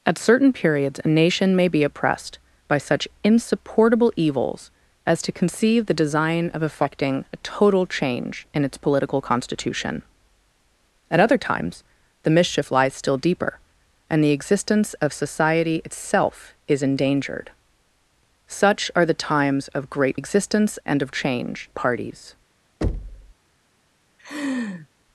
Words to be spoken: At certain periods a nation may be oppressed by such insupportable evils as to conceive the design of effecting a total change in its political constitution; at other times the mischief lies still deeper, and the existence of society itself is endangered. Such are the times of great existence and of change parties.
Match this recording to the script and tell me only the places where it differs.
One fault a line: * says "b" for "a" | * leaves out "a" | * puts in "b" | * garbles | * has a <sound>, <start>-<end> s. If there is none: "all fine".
* has a thud, 22.8-23.3 s
* has a laugh, 24.2-24.9 s